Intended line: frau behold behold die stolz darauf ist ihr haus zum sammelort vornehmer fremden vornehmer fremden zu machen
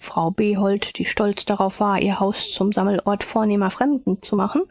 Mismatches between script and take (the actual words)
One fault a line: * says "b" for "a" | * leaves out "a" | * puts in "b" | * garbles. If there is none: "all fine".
* leaves out "behold"
* says "war" for "ist"
* leaves out "vornehmer fremden"